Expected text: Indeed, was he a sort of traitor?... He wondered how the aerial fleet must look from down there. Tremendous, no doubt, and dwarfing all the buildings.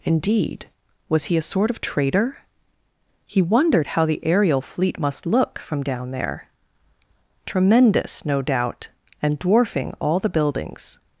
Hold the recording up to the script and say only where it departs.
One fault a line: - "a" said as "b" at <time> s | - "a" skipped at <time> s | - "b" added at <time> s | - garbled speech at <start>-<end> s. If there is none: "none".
none